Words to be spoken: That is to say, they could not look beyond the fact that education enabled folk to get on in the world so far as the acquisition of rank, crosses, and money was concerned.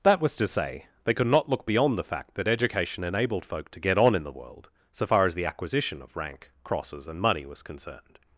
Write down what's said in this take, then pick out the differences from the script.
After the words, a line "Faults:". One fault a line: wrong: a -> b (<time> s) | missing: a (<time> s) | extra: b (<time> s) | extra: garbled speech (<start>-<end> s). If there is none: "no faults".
That was to say, they could not look beyond the fact that education enabled folk to get on in the world so far as the acquisition of rank, crosses, and money was concerned.
Faults:
wrong: is -> was (0.2 s)